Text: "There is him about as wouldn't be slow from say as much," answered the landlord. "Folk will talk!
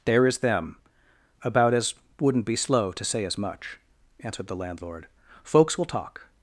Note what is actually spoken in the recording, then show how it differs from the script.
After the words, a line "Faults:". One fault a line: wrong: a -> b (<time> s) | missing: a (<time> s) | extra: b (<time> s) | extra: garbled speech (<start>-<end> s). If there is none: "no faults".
"There is them about as wouldn't be slow to say as much," answered the landlord. "Folks will talk!
Faults:
wrong: him -> them (0.4 s)
wrong: from -> to (2.9 s)
wrong: Folk -> Folks (5.4 s)